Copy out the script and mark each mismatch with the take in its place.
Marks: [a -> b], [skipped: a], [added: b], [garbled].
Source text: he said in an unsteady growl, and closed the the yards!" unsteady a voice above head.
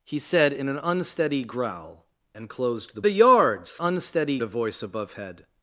he said in an unsteady growl, and closed the the yards!" unsteady a voice above head.